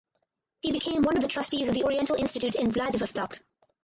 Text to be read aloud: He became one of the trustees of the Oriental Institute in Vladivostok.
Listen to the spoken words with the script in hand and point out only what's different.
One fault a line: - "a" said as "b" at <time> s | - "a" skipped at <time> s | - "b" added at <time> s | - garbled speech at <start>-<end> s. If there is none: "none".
none